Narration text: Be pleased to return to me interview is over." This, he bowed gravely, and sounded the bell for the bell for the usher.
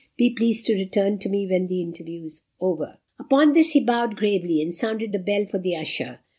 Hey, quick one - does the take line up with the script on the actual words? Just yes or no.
no